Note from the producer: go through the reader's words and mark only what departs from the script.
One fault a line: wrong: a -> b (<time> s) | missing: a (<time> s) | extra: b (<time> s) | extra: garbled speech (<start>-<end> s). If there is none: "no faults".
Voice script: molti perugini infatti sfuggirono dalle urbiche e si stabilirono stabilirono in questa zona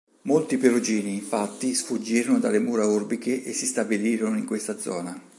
extra: mura (2.6 s)
missing: stabilirono (4.3 s)